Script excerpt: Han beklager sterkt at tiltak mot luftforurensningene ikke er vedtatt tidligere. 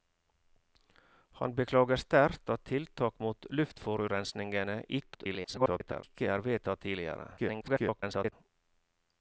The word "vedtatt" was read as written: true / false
true